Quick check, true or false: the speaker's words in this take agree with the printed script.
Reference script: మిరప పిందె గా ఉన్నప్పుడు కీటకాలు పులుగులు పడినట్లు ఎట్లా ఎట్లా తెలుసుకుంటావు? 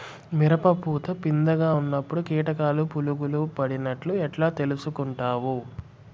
false